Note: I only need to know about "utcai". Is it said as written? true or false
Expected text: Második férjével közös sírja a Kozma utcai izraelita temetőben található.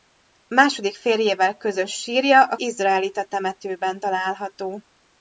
false